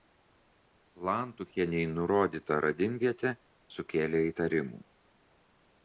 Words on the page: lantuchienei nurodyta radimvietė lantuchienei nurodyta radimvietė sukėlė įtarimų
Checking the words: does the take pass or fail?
fail